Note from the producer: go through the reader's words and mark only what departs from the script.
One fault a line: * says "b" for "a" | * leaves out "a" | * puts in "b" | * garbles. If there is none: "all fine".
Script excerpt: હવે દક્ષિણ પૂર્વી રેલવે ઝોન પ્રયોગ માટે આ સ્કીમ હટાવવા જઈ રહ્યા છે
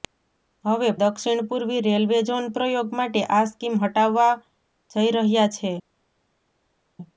all fine